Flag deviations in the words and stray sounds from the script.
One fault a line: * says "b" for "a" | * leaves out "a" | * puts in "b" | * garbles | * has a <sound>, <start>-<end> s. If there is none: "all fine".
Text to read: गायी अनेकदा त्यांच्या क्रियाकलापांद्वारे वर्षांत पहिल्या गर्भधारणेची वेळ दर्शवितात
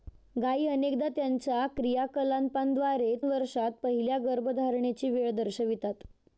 all fine